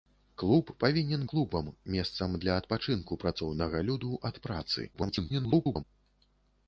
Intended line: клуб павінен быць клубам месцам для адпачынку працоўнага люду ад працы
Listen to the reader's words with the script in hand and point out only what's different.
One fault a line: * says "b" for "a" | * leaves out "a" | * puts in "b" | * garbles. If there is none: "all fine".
* leaves out "быць"
* garbles